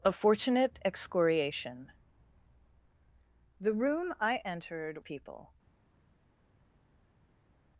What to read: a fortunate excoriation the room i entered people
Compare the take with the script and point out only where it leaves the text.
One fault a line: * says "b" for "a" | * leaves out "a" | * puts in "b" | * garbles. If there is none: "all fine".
all fine